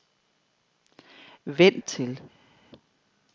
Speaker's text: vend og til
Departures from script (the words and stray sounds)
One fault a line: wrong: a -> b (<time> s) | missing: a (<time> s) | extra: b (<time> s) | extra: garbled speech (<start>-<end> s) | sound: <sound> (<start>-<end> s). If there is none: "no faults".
no faults